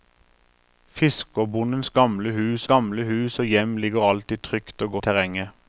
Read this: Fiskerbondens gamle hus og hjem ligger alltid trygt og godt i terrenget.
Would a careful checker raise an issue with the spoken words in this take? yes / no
yes